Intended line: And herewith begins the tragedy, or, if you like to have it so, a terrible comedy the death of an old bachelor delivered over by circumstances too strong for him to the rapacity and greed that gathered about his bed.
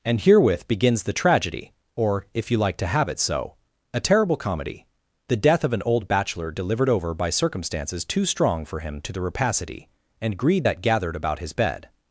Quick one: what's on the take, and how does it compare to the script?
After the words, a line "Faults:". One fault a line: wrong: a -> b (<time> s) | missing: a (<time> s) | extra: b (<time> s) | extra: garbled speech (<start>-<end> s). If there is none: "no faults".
And herewith begins the tragedy, or, if you like to have it so, a terrible comedy the death of an old bachelor delivered over by circumstances too strong for him to the rapacity and greed that gathered about his bed.
Faults:
no faults